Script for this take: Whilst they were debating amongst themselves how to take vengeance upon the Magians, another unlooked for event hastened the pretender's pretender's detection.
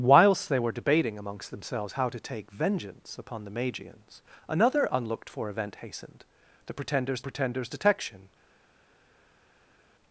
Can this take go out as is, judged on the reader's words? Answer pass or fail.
pass